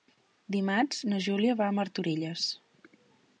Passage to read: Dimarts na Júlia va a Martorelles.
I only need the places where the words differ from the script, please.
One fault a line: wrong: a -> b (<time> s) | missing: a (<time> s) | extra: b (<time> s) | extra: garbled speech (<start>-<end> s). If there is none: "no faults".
no faults